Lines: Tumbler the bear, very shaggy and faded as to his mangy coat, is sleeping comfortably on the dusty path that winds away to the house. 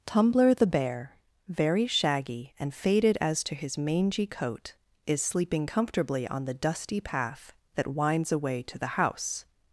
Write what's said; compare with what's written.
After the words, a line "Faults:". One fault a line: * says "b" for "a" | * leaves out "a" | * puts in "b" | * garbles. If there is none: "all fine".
Tumbler the bear, very shaggy and faded as to his mangy coat, is sleeping comfortably on the dusty path that winds away to the house.
Faults:
all fine